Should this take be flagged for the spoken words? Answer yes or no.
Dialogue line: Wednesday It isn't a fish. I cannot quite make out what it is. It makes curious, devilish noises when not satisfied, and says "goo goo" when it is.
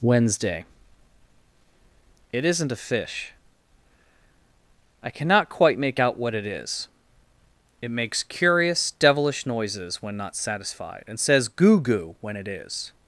no